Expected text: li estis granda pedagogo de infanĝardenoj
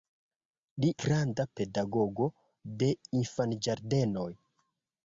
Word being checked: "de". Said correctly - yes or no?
yes